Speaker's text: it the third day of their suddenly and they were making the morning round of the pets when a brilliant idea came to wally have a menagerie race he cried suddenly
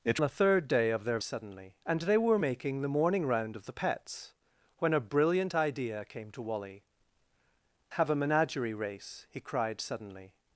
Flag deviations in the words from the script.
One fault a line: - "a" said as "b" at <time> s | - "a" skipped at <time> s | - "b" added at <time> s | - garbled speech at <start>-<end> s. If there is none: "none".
none